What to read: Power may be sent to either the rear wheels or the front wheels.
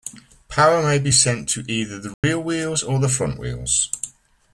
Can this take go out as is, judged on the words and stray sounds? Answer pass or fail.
fail